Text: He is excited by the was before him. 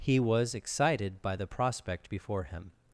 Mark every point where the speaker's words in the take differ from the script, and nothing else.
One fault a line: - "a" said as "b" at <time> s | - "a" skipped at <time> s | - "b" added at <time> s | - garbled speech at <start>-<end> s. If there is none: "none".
- "is" said as "was" at 0.2 s
- "was" said as "prospect" at 1.4 s